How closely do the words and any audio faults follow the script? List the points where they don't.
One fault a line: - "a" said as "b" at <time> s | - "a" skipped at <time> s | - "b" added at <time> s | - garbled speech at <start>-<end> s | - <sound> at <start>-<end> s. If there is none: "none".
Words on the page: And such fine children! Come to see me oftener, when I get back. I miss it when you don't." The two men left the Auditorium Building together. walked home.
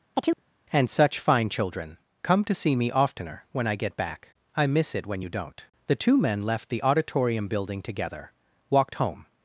- chirp at 0.1-0.4 s